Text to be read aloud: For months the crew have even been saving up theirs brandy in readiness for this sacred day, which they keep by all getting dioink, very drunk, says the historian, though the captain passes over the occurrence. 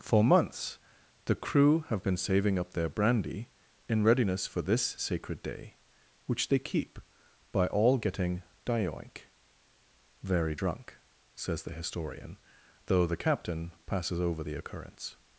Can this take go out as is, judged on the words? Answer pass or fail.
fail